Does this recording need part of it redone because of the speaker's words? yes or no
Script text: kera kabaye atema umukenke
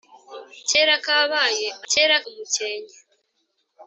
yes